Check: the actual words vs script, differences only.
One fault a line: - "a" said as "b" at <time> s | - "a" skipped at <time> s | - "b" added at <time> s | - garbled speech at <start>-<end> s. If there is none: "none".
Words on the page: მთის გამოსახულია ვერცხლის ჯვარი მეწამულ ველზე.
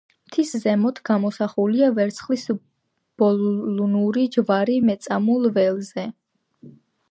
- "ზემოთ" added at 0.6 s
- "ბოლნური" added at 3.2 s